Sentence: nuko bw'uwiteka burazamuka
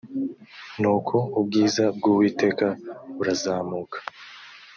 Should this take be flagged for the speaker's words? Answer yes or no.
yes